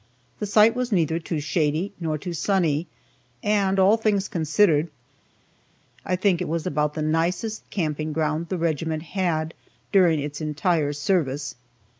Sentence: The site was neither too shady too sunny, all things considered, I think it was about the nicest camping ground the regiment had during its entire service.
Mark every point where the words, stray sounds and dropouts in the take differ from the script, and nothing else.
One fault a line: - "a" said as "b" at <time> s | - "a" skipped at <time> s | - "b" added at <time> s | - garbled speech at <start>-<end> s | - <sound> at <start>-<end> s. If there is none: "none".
- "nor" added at 2.0 s
- "and" added at 3.4 s